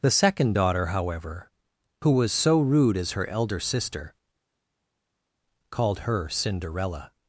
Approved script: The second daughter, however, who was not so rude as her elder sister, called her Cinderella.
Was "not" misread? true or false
true